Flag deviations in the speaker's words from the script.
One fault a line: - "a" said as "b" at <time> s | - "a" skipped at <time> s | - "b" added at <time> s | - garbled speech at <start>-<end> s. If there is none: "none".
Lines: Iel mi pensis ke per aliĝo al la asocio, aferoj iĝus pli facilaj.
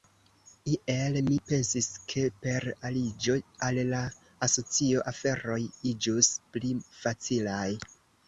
none